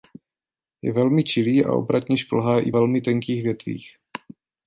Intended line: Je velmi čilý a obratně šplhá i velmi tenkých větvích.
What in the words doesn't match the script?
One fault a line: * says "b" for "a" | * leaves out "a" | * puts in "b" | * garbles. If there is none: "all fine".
all fine